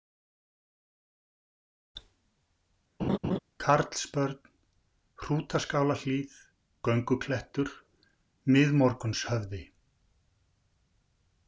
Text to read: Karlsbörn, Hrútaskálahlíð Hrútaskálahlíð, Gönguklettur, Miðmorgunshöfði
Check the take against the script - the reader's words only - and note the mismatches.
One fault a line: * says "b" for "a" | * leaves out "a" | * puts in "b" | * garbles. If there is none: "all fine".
* leaves out "Hrútaskálahlíð"